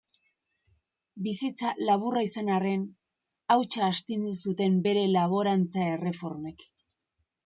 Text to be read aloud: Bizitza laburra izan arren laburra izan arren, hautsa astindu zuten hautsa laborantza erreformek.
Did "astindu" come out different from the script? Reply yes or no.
no